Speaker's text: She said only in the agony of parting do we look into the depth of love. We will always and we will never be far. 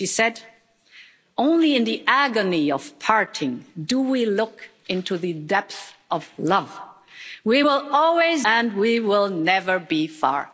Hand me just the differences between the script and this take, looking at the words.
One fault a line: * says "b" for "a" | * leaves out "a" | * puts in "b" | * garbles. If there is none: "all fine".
all fine